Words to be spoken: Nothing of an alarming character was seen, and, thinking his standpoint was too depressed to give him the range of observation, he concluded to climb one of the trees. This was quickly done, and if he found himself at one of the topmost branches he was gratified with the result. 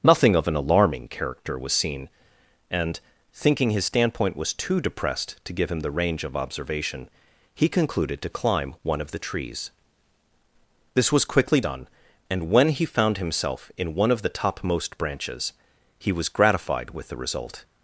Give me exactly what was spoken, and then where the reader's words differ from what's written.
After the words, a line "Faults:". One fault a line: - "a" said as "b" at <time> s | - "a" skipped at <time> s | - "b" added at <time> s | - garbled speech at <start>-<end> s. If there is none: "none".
Nothing of an alarming character was seen, and, thinking his standpoint was too depressed to give him the range of observation, he concluded to climb one of the trees. This was quickly done, and when he found himself in one of the topmost branches he was gratified with the result.
Faults:
- "if" said as "when" at 12.5 s
- "at" said as "in" at 13.8 s